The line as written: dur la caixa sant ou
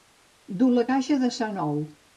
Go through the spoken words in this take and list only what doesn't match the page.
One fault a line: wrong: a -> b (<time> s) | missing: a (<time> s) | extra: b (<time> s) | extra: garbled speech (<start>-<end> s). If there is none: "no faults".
extra: de (1.2 s)